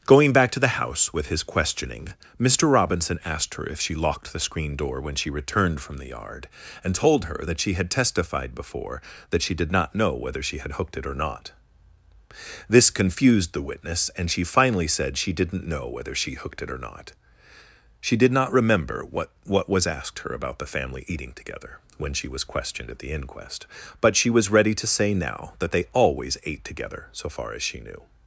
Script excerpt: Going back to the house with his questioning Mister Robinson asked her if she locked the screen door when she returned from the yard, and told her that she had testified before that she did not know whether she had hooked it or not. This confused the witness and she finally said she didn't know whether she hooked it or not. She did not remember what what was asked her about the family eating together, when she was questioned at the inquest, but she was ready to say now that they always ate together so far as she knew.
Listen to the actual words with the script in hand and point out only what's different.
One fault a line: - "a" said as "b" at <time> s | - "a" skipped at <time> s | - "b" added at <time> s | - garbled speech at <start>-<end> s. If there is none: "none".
none